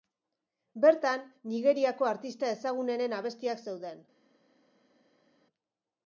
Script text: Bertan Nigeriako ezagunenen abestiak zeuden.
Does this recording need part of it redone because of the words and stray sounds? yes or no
yes